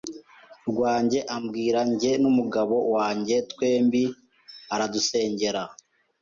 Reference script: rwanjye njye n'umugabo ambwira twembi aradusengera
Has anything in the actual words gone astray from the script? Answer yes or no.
yes